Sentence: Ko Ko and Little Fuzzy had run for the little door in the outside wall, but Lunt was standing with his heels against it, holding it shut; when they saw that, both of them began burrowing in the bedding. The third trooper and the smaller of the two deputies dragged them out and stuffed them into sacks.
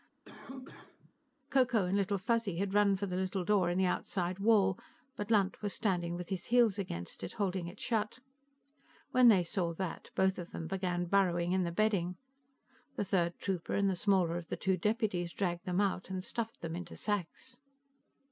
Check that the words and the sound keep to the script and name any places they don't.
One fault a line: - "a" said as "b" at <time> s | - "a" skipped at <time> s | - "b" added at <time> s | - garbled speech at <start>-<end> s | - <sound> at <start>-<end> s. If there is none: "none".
- cough at 0.2-1.1 s